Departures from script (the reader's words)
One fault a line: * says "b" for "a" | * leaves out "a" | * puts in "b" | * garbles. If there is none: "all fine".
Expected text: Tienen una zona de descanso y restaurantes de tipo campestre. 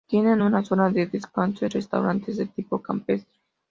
all fine